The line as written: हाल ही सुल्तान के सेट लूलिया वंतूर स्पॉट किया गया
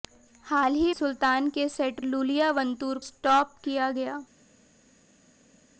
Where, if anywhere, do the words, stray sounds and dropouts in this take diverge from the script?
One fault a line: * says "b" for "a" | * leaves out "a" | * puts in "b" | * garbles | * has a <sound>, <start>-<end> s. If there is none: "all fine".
all fine